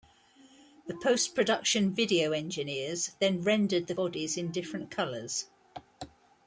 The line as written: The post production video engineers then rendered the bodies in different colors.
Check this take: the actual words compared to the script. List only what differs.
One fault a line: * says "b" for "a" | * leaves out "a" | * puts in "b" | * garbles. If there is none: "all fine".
all fine